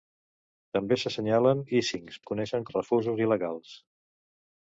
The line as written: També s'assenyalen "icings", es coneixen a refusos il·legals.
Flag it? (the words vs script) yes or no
no